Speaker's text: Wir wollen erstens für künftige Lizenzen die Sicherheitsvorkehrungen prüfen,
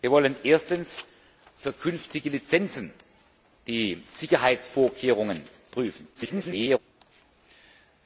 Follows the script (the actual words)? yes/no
no